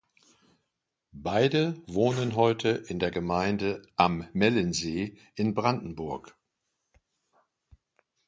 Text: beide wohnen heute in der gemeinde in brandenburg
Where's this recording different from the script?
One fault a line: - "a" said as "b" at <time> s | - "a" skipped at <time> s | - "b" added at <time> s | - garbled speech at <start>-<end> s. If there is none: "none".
- "am mellensee" added at 4.0 s